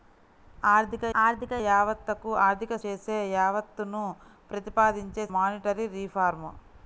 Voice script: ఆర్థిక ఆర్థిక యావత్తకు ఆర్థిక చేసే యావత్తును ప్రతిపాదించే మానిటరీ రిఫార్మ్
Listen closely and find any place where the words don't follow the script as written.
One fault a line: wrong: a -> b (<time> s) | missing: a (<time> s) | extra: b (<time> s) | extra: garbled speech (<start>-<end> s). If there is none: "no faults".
no faults